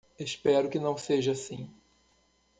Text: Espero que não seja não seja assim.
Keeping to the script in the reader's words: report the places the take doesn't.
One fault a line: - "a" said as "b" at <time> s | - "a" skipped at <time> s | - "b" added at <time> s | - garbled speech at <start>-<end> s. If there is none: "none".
- "não seja" skipped at 1.3 s